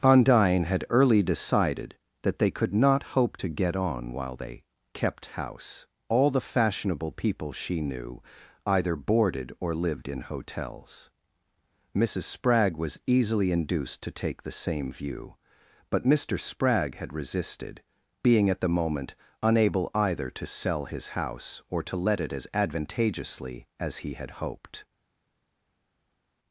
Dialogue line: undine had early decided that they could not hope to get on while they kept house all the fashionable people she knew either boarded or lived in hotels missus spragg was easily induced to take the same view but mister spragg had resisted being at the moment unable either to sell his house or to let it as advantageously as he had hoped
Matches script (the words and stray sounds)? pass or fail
pass